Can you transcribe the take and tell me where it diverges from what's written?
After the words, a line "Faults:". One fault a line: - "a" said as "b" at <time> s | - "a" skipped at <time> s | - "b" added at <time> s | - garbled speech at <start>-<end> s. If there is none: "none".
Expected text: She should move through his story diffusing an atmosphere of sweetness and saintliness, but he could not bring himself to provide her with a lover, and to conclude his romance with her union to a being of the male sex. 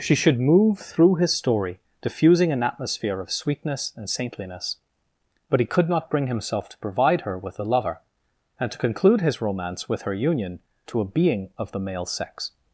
She should move through his story diffusing an atmosphere of sweetness and saintliness, but he could not bring himself to provide her with a lover, and to conclude his romance with her union to a being of the male sex.
Faults:
none